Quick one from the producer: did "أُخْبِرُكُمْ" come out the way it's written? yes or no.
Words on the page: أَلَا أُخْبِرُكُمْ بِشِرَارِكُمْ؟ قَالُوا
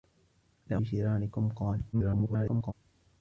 no